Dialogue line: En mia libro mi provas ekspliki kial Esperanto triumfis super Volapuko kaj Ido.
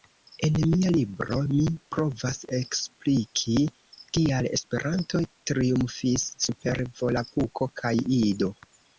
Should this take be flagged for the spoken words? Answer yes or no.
no